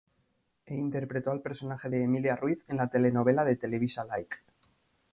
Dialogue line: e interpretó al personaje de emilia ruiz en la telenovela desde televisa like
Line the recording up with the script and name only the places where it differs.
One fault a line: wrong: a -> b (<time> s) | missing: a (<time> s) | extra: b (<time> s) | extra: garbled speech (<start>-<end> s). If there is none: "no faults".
wrong: desde -> de (3.4 s)